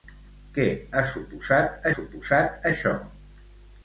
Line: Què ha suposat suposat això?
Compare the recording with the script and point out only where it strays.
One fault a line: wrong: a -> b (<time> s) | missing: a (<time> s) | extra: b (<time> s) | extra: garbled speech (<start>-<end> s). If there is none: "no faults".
no faults